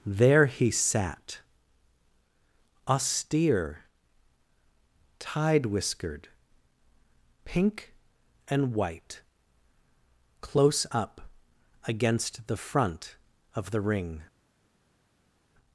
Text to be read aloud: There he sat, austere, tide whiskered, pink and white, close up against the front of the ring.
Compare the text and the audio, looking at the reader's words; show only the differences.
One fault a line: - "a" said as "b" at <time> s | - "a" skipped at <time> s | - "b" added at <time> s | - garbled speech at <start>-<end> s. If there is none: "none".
none